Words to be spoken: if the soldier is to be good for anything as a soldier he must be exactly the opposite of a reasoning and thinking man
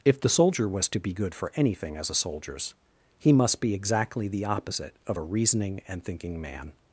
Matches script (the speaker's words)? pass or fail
fail